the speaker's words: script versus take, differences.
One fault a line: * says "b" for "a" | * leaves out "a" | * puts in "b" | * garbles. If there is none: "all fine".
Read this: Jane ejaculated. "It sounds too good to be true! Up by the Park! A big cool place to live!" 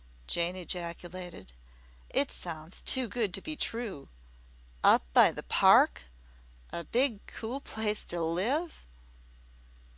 all fine